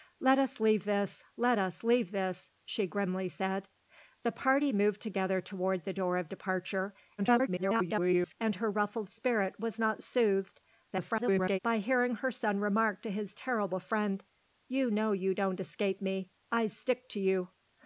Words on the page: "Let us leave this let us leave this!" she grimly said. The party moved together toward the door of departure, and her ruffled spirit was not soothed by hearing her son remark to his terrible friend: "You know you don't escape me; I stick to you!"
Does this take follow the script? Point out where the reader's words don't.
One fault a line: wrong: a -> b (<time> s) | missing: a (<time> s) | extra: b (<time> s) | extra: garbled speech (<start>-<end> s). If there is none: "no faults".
extra: garbled speech (7.2-8.4 s)
extra: garbled speech (10.9-11.6 s)